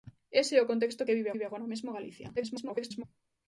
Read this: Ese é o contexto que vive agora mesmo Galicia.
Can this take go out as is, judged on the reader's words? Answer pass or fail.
fail